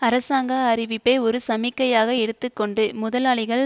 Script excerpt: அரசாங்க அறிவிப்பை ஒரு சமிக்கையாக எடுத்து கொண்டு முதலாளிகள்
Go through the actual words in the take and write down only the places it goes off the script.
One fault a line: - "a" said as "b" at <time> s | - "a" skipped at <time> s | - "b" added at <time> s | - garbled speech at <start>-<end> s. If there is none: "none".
none